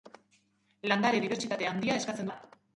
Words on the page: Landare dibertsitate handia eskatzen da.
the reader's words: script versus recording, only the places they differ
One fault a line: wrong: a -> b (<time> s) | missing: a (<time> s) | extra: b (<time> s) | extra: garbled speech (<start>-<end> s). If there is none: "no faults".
no faults